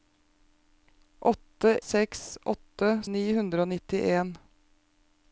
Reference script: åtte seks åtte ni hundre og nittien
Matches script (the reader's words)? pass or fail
pass